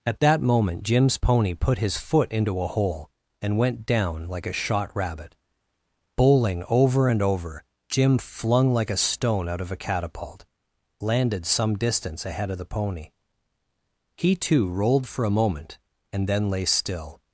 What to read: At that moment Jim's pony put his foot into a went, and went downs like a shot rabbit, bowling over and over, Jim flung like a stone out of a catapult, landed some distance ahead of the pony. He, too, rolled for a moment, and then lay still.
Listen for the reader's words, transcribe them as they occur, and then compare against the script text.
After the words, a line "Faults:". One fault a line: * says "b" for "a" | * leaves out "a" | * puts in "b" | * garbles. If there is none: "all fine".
At that moment Jim's pony put his foot into a hole, and went down like a shot rabbit, bowling over and over, Jim flung like a stone out of a catapult, landed some distance ahead of the pony. He, too, rolled for a moment, and then lay still.
Faults:
* says "hole" for "went"
* says "down" for "downs"